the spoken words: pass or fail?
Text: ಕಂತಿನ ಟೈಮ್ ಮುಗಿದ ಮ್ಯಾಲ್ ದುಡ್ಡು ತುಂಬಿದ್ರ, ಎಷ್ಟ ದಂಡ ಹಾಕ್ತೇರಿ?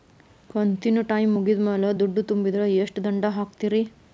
pass